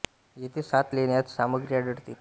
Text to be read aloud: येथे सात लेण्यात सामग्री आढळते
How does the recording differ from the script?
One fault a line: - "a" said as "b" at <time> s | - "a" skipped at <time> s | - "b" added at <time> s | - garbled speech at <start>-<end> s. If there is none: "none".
none